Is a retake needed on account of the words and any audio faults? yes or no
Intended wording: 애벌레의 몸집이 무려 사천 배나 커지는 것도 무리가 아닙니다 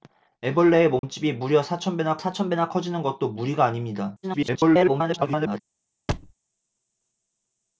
yes